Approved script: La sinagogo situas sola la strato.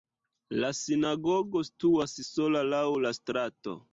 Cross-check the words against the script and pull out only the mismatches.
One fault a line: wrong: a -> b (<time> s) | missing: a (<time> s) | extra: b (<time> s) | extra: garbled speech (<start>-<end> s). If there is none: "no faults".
extra: laŭ (2.7 s)